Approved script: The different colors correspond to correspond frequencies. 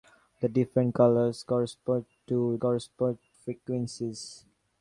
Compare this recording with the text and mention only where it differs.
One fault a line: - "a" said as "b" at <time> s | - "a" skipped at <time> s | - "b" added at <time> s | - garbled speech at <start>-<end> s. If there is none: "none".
none